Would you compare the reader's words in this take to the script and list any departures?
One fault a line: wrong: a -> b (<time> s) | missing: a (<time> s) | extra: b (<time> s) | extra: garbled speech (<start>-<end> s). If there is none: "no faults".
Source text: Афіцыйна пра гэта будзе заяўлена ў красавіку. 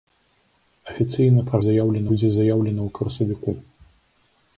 wrong: гэта -> заяўлена (1.7 s)